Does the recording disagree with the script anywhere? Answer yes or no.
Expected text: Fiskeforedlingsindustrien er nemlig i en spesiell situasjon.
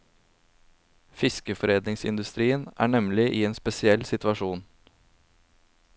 no